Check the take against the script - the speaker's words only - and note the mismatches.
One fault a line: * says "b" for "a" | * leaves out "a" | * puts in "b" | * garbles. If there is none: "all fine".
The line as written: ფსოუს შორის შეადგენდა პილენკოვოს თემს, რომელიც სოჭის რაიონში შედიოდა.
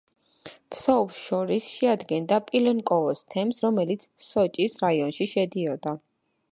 all fine